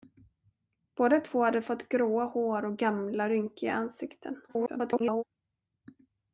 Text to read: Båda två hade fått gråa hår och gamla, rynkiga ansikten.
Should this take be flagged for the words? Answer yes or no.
yes